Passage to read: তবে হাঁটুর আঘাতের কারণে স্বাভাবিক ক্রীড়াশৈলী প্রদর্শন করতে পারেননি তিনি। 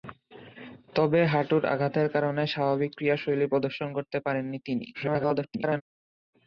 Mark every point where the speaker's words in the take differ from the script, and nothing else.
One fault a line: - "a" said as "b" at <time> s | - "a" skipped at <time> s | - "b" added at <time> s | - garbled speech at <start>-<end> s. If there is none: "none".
- garbled speech at 4.9-5.8 s